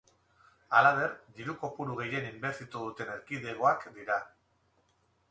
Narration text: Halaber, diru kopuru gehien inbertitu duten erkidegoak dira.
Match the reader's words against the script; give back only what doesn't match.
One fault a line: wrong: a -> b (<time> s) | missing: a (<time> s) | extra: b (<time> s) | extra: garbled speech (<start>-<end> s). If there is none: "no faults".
no faults